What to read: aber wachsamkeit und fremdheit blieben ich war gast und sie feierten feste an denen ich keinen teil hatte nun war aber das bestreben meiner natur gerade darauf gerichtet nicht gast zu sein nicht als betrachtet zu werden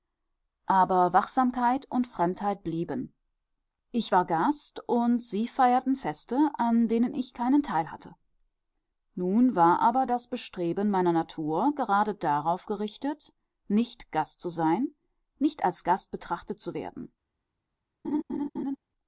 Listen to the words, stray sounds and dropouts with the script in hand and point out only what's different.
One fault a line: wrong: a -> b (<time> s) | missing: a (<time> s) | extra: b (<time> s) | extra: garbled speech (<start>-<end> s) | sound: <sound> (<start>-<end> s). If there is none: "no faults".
extra: gast (15.8 s)
sound: laugh (18.0-18.8 s)